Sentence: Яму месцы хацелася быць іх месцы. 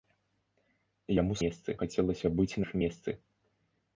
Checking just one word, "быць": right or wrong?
right